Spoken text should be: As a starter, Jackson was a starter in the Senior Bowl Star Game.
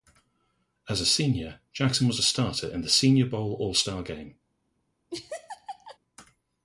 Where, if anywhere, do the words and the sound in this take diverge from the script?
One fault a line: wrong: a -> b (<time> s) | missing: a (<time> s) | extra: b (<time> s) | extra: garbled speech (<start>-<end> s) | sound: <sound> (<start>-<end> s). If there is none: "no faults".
wrong: starter -> senior (1.1 s)
extra: All (3.6 s)
sound: laugh (5.1-6.0 s)